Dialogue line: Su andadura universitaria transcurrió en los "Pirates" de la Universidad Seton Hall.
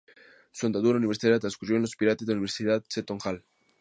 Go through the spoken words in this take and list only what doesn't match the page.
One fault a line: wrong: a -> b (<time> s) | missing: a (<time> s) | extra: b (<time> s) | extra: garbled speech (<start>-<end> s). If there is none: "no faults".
no faults